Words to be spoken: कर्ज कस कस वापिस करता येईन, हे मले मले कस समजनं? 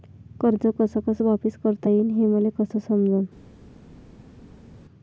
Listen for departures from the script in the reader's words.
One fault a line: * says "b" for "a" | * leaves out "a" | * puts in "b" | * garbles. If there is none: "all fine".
* leaves out "मले"